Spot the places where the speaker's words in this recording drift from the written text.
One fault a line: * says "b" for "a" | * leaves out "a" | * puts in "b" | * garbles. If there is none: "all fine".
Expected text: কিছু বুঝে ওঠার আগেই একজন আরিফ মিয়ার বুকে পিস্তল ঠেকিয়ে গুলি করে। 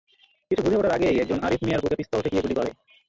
all fine